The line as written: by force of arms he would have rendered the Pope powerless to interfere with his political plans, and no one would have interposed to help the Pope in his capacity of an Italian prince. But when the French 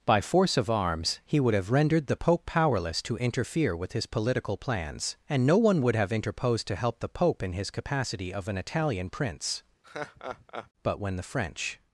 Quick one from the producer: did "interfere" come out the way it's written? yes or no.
yes